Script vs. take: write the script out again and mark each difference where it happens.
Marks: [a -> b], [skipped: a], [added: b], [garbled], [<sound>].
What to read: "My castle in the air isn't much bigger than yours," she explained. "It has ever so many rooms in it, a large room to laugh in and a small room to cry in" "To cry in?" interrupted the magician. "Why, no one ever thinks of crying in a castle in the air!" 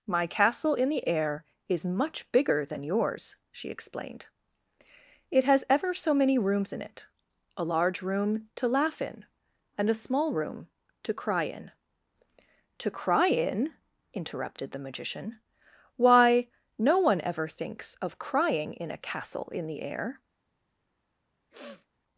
"My castle in the air [isn't -> is] much bigger than yours," she explained. "It has ever so many rooms in it, a large room to laugh in and a small room to cry in" "To cry in?" interrupted the magician. "Why, no one ever thinks of crying in a castle in the air!" [sniff]